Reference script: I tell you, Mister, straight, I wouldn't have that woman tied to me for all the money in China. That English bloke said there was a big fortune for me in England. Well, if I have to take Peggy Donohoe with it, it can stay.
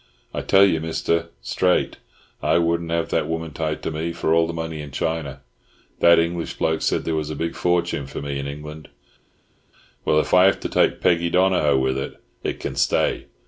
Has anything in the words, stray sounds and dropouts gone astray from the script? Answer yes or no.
no